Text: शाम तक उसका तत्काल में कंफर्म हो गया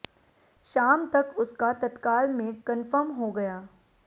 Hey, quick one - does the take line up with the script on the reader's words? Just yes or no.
yes